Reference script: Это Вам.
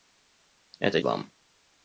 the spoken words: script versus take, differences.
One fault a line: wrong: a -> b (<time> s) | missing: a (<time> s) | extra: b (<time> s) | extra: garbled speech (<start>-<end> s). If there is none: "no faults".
no faults